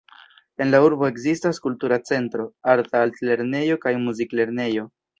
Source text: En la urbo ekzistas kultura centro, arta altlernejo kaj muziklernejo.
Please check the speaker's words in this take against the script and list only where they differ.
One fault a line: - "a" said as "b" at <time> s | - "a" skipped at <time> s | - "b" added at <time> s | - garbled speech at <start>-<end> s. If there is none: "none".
none